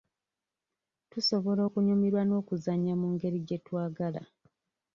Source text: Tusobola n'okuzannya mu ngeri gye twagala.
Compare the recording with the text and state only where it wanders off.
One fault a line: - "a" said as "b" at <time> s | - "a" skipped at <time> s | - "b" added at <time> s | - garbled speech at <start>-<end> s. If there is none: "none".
- "okunyumirwa" added at 1.7 s